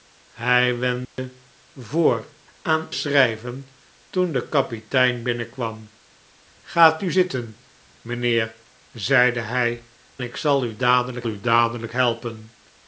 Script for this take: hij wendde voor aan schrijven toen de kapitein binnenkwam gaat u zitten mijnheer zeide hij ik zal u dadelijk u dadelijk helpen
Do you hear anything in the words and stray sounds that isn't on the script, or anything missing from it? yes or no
yes